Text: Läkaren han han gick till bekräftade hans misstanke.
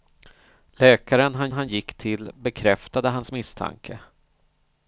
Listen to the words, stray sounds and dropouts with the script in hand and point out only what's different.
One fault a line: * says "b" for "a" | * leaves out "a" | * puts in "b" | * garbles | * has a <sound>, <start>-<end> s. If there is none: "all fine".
all fine